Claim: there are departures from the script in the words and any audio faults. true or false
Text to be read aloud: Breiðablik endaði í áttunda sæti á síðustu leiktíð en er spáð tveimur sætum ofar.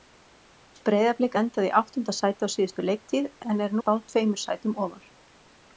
false